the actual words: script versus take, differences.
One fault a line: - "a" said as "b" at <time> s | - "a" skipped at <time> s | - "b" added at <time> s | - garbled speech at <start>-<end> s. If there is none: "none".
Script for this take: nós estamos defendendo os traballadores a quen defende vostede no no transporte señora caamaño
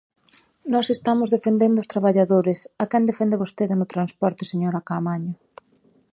- "no" skipped at 3.9 s